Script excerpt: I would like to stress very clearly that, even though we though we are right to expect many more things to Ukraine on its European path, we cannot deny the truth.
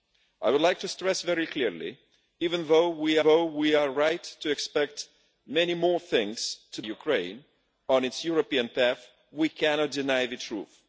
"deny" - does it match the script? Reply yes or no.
yes